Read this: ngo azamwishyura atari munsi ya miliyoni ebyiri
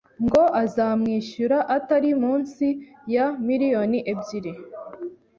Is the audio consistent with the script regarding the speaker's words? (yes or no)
yes